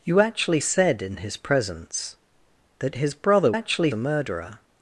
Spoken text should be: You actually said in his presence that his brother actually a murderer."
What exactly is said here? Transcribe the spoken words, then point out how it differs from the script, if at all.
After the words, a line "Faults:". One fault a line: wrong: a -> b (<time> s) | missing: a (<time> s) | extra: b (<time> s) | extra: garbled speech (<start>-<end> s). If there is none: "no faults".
You actually said in his presence that his brother actually a murderer."
Faults:
no faults